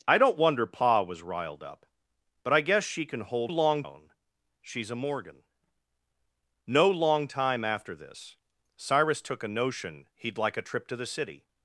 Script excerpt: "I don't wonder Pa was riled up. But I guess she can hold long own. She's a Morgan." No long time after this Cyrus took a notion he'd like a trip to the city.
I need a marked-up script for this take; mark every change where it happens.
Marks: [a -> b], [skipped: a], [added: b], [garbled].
"I don't wonder Pa was riled up. But I guess she can hold long own. She's a Morgan." No long time after this Cyrus took a notion he'd like a trip to the city.